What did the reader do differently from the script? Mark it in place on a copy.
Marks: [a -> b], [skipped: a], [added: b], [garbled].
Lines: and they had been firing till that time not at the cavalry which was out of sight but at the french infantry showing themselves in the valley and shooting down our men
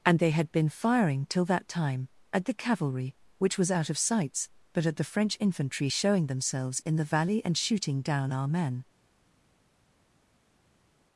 and they had been firing till that time [skipped: not] at the cavalry which was out of [sight -> sights] but at the french infantry showing themselves in the valley and shooting down our men